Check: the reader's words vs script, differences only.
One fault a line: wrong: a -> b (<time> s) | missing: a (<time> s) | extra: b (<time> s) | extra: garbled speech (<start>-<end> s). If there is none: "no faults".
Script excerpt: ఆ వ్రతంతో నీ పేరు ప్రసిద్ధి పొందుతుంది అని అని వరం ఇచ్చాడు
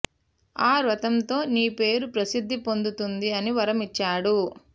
missing: అని (3.5 s)